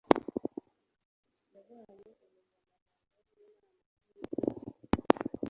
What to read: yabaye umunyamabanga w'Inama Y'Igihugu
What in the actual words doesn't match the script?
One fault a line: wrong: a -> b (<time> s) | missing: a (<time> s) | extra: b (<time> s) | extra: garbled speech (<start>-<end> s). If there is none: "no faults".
extra: Nkuru (4.0 s)